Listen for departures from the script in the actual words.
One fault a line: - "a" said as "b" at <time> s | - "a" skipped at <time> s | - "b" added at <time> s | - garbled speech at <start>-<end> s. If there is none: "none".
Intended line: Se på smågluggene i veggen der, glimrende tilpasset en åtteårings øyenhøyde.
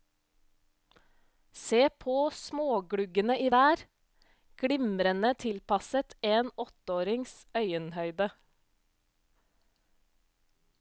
- "veggen" skipped at 3.5 s